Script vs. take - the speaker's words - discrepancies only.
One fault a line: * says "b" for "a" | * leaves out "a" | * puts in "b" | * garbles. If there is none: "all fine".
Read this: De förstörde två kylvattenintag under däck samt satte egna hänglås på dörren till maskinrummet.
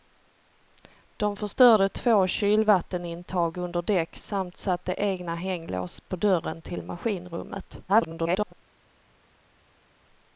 * garbles